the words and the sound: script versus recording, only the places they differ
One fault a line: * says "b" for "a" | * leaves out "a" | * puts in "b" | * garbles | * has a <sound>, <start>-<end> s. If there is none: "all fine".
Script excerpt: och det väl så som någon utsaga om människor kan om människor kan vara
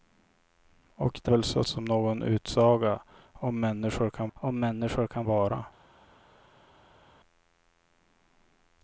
all fine